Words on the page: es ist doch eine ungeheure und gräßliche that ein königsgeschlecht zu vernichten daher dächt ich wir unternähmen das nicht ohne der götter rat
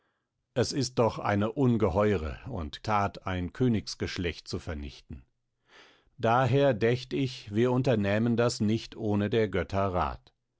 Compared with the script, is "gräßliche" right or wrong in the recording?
wrong